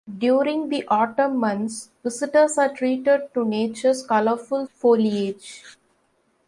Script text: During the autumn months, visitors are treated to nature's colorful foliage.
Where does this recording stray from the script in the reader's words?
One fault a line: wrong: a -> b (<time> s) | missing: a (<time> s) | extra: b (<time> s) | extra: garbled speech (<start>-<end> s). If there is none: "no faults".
no faults